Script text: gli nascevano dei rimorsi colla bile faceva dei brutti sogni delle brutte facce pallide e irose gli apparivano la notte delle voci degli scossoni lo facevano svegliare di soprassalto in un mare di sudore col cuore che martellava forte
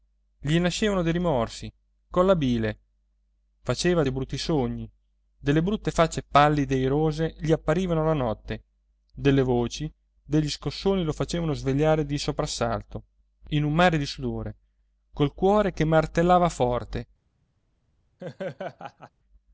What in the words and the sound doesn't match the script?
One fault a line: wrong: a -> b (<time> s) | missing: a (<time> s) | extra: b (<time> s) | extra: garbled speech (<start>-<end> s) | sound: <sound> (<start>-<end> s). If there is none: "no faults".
sound: laugh (18.2-19.1 s)